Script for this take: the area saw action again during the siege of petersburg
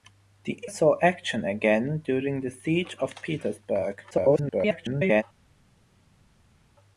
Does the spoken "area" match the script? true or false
false